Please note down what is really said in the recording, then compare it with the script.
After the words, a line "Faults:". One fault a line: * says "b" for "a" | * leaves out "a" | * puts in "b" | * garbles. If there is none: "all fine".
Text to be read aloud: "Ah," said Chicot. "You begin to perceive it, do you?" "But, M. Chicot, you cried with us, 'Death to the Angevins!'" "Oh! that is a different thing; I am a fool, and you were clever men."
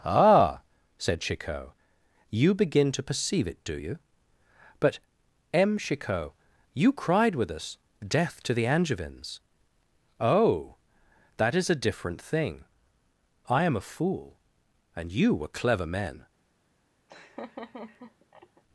"Ah," said Chicot. "You begin to perceive it, do you?" "But, M. Chicot, you cried with us, 'Death to the Angevins!'" "Oh! that is a different thing; I am a fool, and you were clever men."
Faults:
all fine